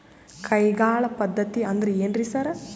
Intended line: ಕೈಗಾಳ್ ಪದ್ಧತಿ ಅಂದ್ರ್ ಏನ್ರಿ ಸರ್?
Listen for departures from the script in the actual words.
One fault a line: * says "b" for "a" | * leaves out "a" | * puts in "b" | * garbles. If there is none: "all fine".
all fine